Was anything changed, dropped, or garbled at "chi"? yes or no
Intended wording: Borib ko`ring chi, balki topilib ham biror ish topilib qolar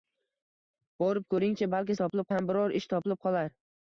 no